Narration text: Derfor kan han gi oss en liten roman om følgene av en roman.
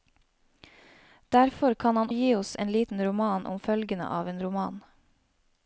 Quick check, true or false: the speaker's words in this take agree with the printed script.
true